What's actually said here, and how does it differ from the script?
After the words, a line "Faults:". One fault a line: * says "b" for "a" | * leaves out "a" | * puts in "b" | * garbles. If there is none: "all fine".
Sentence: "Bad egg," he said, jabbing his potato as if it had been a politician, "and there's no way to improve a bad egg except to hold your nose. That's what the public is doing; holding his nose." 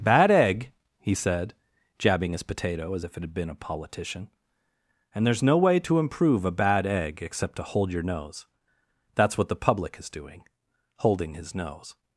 "Bad egg," he said, jabbing his potato as if it had been a politician, "and there's no way to improve a bad egg except to hold your nose. That's what the public is doing; holding his nose."
Faults:
all fine